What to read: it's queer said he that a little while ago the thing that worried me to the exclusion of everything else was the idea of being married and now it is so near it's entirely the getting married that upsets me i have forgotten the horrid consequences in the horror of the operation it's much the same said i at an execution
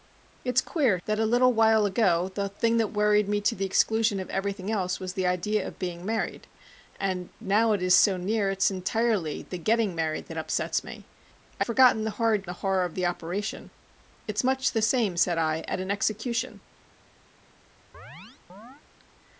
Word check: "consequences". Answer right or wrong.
wrong